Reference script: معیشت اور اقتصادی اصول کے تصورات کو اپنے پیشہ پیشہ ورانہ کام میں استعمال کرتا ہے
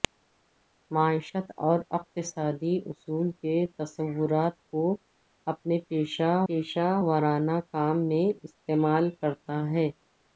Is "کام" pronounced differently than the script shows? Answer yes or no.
no